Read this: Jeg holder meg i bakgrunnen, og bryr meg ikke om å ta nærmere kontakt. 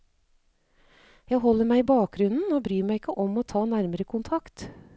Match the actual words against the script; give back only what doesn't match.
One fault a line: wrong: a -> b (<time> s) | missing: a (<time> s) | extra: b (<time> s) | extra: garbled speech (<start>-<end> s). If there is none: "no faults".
no faults